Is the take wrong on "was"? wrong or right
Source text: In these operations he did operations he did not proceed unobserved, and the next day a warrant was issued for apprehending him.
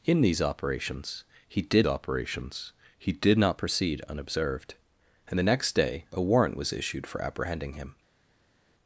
right